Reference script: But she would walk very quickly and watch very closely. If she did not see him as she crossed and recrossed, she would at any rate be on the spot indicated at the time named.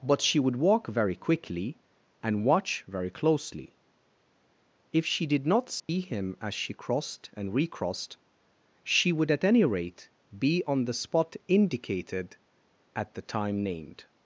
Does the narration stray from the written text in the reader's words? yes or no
no